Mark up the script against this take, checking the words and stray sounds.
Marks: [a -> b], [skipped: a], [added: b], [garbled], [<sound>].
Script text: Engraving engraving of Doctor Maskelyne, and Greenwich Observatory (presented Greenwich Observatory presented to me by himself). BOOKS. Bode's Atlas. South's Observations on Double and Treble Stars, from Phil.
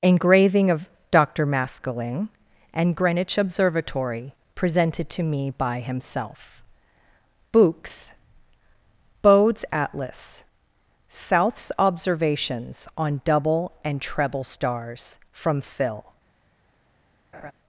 Engraving [skipped: engraving] of Doctor Maskelyne, and Greenwich Observatory (presented [skipped: Greenwich Observatory presented] to me by himself). BOOKS. Bode's Atlas. South's Observations on Double and Treble Stars, from Phil. [laugh]